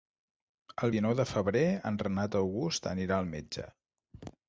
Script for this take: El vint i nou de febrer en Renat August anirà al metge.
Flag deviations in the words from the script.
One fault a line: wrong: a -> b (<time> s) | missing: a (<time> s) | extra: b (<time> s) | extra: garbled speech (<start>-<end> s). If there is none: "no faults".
missing: vint (0.9 s)